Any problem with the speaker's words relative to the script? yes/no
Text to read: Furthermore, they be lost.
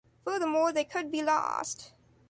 yes